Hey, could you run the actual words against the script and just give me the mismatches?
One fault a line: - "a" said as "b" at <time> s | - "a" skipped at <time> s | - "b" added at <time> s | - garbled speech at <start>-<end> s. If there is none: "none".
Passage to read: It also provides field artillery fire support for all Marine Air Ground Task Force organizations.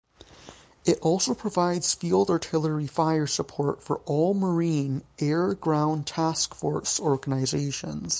none